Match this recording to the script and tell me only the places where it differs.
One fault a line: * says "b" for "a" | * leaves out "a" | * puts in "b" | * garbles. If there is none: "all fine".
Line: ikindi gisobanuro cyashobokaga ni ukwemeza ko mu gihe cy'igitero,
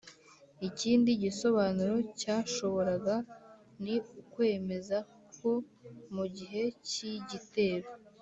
all fine